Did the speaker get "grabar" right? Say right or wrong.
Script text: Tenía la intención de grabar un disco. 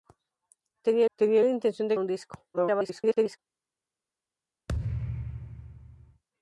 wrong